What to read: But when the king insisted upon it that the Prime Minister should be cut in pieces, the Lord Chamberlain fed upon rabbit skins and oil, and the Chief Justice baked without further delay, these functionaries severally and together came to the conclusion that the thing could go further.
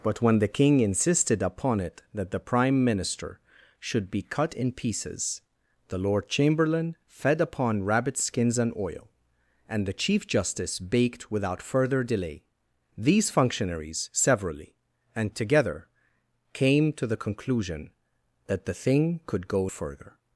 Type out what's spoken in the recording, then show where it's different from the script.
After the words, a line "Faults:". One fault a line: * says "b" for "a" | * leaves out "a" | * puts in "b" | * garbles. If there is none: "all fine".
But when the king insisted upon it that the Prime Minister should be cut in pieces, the Lord Chamberlain fed upon rabbit skins and oil, and the Chief Justice baked without further delay, these functionaries severally and together came to the conclusion that the thing could go further.
Faults:
all fine